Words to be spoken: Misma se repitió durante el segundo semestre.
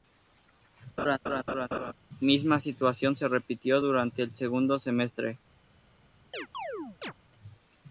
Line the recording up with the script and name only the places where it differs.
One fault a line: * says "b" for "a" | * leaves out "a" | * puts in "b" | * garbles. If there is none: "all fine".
* puts in "situación"